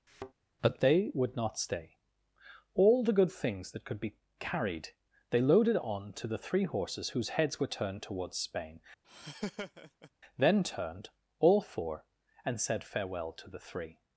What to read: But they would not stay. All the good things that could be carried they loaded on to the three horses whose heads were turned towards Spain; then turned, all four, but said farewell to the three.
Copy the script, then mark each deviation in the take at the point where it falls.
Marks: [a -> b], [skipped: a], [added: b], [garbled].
But they would not stay. All the good things that could be carried they loaded on to the three horses whose heads were turned towards Spain; then turned, all four, [but -> and] said farewell to the three.